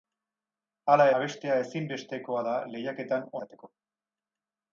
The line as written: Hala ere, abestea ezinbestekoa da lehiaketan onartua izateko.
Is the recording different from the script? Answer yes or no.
yes